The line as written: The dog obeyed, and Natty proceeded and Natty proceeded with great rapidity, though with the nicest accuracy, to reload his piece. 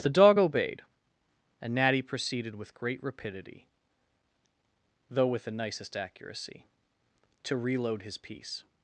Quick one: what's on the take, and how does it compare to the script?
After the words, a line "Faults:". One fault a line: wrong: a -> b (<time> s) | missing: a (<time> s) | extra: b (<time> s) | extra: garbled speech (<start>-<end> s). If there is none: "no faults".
The dog obeyed, and Natty proceeded with great rapidity, though with the nicest accuracy, to reload his piece.
Faults:
missing: and Natty proceeded (2.6 s)